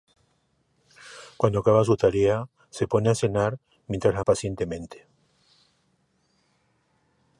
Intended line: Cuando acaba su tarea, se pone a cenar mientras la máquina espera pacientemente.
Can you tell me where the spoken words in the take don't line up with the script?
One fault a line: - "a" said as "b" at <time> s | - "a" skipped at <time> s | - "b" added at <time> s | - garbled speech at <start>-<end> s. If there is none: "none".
- "máquina espera" skipped at 4.2 s